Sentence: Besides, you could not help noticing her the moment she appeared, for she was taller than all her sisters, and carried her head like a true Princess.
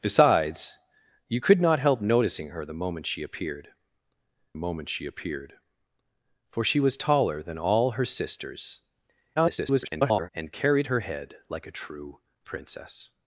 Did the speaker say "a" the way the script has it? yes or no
yes